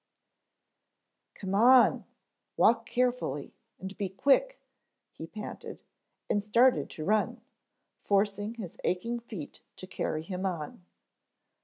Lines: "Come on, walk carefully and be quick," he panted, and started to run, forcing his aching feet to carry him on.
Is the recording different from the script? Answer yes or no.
no